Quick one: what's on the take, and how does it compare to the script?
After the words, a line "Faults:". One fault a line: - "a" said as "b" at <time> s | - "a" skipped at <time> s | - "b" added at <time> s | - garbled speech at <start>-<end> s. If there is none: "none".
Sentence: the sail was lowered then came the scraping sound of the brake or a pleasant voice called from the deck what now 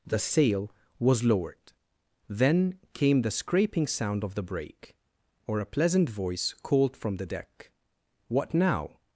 the sail was lowered then came the scraping sound of the brake or a pleasant voice called from the deck what now
Faults:
none